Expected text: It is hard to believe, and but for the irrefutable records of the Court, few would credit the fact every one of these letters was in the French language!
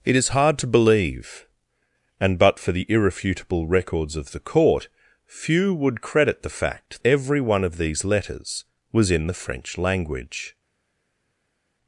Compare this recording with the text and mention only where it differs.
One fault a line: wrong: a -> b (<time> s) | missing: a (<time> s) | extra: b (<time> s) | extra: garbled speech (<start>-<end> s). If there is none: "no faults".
no faults